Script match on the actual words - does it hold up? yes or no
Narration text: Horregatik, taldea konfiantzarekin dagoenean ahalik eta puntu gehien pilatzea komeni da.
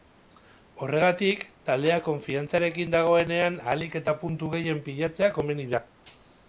yes